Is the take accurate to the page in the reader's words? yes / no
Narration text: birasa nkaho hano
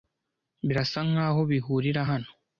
no